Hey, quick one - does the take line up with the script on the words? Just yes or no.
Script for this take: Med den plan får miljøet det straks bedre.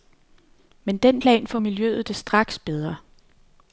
yes